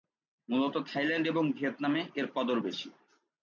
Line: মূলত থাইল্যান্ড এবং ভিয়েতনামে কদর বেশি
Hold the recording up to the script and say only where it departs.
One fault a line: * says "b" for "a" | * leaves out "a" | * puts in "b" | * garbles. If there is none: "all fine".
* puts in "এর"